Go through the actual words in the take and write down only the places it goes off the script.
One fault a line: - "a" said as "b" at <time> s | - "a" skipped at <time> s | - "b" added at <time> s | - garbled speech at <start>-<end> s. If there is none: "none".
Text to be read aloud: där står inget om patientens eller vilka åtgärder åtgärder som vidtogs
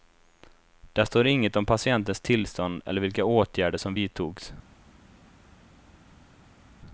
- "tillstånd" added at 2.2 s
- "åtgärder" skipped at 3.8 s